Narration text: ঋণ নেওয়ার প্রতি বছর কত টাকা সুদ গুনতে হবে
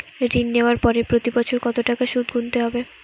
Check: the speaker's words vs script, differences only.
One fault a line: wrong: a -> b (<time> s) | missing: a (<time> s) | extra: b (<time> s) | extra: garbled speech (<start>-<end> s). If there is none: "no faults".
extra: পরে (0.8 s)